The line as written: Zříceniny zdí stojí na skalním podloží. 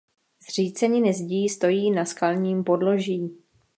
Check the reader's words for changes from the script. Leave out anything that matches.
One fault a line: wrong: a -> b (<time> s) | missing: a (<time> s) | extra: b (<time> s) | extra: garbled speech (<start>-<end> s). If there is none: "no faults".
no faults